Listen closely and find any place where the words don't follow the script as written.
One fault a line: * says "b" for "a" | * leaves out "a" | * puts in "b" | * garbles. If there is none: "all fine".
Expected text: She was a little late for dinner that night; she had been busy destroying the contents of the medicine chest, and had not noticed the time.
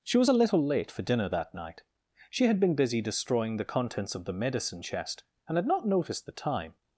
all fine